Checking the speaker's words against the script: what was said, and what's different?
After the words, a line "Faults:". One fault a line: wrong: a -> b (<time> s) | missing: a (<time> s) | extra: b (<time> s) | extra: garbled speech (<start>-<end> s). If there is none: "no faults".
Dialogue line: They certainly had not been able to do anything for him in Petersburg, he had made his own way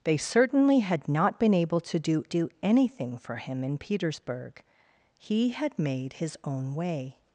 They certainly had not been able to do do anything for him in Petersburg, he had made his own way
Faults:
extra: do (2.3 s)